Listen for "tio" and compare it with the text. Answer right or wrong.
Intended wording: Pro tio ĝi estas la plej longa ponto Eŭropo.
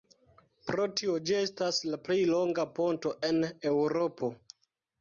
right